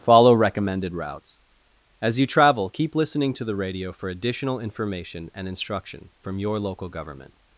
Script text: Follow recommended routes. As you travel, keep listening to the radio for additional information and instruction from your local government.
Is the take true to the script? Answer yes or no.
yes